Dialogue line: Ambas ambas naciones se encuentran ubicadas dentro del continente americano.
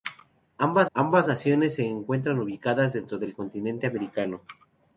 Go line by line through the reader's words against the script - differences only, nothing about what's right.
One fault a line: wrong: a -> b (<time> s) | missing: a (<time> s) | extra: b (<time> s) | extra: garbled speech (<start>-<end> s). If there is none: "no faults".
no faults